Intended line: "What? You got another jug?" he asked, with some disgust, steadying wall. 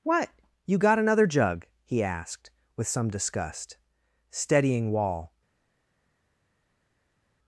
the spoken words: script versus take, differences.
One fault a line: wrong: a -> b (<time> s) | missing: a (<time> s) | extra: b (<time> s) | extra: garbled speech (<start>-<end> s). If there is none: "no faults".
no faults